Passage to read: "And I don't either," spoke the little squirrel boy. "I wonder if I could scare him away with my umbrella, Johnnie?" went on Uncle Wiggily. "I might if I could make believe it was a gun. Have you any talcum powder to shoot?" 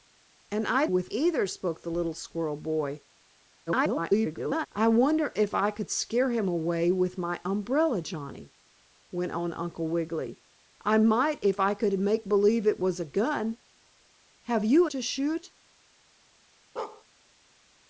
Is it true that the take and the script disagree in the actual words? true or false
true